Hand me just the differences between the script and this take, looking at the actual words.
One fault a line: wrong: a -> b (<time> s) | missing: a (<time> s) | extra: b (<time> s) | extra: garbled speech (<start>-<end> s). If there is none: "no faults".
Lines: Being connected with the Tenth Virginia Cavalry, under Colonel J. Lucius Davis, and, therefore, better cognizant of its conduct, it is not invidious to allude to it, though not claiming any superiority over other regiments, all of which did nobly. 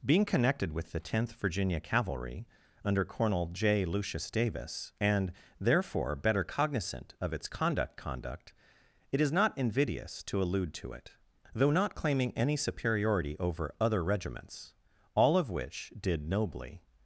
extra: conduct (8.0 s)